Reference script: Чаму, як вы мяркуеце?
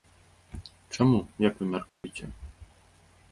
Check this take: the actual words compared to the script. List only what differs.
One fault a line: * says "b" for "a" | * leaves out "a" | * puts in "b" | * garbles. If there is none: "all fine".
all fine